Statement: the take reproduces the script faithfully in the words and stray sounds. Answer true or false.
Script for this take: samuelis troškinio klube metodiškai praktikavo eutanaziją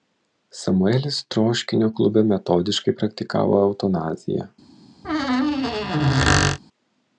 false